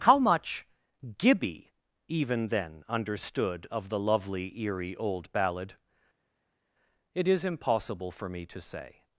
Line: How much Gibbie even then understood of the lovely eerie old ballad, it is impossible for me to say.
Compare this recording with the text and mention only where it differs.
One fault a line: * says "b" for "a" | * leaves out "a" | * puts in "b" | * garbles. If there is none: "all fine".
all fine